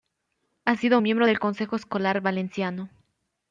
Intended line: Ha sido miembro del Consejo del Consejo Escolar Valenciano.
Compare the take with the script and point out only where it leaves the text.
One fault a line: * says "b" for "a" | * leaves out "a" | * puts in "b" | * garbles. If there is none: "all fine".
* leaves out "del Consejo"